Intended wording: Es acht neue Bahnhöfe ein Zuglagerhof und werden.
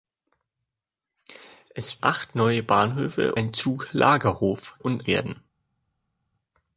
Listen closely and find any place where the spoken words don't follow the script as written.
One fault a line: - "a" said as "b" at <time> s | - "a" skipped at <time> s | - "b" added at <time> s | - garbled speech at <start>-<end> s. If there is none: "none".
none